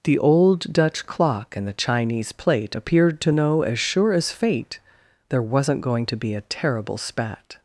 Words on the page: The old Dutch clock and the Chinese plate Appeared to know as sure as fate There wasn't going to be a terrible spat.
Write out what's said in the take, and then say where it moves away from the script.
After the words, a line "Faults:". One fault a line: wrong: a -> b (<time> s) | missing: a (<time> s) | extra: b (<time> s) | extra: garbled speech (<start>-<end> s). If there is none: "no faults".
The old Dutch clock and the Chinese plate Appeared to know as sure as fate There wasn't going to be a terrible spat.
Faults:
no faults